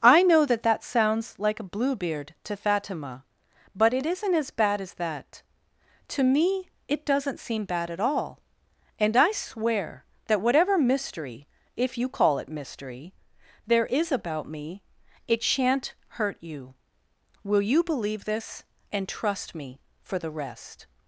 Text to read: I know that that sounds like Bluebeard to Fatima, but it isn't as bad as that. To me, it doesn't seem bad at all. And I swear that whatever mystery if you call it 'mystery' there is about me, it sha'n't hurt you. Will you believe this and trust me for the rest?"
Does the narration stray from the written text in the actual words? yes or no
yes